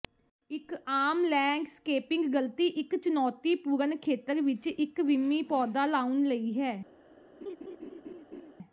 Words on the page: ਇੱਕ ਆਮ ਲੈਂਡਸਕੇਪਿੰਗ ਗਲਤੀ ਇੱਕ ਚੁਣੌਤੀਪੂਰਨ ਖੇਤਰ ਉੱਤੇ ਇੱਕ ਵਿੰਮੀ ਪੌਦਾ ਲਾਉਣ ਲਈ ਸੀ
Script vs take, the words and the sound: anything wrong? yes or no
yes